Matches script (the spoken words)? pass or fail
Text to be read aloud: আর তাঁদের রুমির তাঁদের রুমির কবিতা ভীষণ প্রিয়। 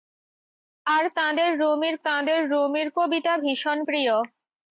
pass